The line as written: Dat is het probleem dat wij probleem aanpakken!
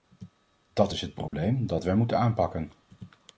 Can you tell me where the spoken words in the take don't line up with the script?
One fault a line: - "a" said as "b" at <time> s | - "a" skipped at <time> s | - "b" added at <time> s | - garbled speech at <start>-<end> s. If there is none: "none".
- "probleem" said as "moeten" at 1.9 s